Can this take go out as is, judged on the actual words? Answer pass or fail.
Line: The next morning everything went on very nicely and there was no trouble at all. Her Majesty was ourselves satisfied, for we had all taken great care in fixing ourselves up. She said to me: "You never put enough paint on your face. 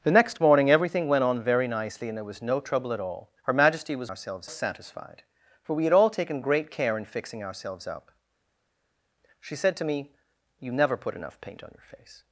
pass